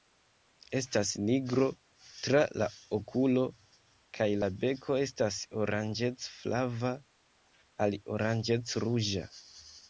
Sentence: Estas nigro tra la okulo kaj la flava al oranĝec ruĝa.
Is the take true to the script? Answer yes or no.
no